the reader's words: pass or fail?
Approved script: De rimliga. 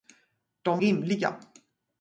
pass